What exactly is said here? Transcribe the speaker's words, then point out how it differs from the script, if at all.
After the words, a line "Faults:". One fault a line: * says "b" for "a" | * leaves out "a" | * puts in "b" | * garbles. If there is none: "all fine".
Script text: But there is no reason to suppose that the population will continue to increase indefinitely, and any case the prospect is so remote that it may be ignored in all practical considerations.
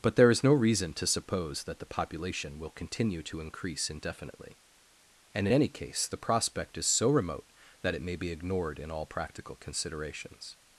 But there is no reason to suppose that the population will continue to increase indefinitely, and any case the prospect is so remote that it may be ignored in all practical considerations.
Faults:
all fine